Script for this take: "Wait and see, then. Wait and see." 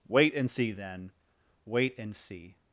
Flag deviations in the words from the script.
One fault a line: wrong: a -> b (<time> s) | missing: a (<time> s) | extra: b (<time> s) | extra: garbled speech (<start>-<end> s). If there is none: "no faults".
no faults